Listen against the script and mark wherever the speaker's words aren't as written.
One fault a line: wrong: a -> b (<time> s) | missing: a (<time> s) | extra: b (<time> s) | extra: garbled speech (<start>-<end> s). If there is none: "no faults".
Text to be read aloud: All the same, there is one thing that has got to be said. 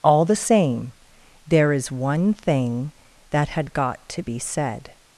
wrong: has -> had (3.5 s)